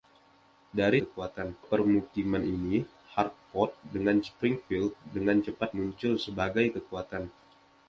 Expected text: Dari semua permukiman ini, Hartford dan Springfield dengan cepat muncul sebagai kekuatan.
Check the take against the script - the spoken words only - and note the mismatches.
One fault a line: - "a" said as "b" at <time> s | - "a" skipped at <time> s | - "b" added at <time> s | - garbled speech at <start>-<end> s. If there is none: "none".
- "semua" said as "kekuatan" at 1.0 s
- "dan" said as "dengan" at 3.9 s